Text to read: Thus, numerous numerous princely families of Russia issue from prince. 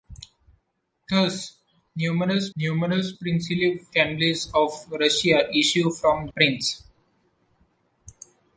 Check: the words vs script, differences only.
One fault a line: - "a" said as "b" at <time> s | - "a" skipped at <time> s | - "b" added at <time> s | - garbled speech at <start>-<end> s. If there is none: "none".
none